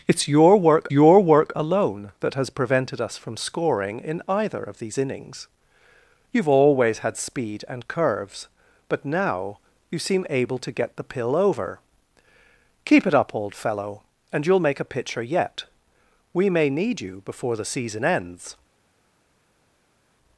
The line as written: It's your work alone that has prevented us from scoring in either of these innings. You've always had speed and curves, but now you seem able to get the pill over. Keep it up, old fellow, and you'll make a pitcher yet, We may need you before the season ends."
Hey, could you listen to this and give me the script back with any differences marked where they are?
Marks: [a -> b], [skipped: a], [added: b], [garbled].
It's your work [added: your work] alone that has prevented us from scoring in either of these innings. You've always had speed and curves, but now you seem able to get the pill over. Keep it up, old fellow, and you'll make a pitcher yet, We may need you before the season ends."